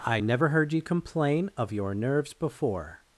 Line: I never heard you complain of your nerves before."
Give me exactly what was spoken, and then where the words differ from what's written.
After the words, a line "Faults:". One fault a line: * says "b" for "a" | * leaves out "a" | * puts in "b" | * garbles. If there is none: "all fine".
I never heard you complain of your nerves before."
Faults:
all fine